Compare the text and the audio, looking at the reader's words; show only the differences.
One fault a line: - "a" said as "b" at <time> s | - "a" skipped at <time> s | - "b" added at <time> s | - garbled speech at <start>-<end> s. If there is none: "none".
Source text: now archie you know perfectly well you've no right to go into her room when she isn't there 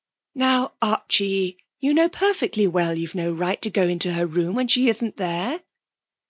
none